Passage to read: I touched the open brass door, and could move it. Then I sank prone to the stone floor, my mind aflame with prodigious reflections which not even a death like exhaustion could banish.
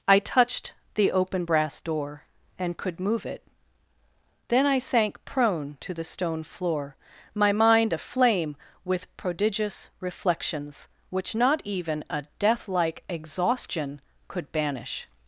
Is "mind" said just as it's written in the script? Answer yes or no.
yes